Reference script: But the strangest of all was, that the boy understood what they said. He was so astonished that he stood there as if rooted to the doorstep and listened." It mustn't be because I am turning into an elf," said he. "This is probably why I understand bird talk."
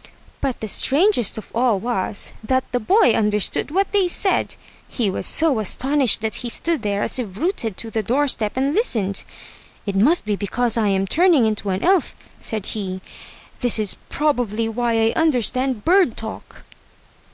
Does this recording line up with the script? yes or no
no